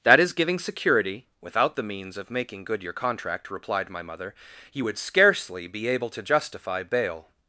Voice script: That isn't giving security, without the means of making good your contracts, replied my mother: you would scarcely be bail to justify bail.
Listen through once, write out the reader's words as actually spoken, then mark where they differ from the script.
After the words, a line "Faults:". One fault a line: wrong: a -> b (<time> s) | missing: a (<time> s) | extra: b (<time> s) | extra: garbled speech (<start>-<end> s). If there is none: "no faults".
That is giving security, without the means of making good your contract, replied my mother: you would scarcely be able to justify bail.
Faults:
wrong: isn't -> is (0.2 s)
wrong: contracts -> contract (2.9 s)
wrong: bail -> able (5.9 s)